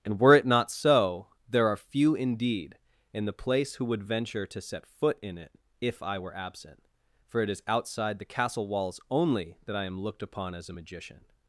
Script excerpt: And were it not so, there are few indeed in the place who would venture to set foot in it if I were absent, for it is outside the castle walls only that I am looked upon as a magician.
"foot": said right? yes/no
yes